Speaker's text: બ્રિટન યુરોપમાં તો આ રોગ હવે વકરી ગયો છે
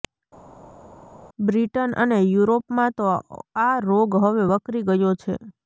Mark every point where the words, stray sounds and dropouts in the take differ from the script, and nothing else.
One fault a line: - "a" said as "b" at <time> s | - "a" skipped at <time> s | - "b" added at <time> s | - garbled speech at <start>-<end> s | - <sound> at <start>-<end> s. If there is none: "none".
- "અને" added at 2.0 s